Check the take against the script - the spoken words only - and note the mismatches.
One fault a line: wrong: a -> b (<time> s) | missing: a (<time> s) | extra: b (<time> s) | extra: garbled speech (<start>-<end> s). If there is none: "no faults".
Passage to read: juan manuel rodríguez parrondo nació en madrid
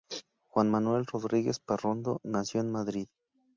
no faults